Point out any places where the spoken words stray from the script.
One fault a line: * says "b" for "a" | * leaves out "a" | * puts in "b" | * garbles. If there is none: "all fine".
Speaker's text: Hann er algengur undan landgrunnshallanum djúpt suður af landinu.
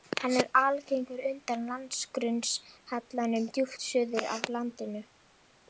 all fine